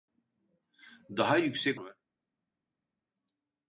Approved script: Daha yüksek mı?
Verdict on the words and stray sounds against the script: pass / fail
pass